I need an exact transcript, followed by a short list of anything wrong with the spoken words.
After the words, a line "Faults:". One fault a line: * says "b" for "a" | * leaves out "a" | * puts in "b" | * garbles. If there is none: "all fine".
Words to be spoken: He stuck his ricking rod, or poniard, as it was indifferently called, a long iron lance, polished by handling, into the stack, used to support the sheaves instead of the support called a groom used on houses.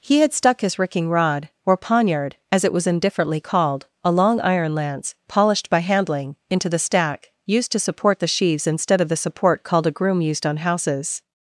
He had stuck his ricking rod, or poniard, as it was indifferently called, a long iron lance, polished by handling, into the stack, used to support the sheaves instead of the support called a groom used on houses.
Faults:
* puts in "had"